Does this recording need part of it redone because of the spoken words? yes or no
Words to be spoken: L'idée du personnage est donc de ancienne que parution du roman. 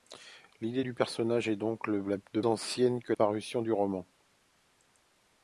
no